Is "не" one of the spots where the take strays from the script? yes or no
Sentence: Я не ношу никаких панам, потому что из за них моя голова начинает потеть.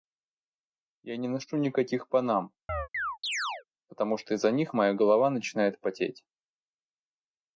no